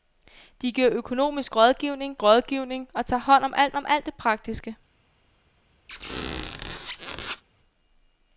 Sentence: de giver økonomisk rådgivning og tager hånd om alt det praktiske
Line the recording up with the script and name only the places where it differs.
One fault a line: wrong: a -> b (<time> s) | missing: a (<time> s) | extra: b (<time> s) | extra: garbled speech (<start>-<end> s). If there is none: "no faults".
extra: rådgivning (2.2 s)
extra: om alt (3.8 s)